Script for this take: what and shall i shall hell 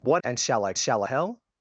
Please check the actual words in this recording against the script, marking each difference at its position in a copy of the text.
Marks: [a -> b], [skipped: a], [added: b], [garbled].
what and shall i shall hell